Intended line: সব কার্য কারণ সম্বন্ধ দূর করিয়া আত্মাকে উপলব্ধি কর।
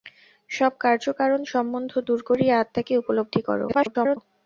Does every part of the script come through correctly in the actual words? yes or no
no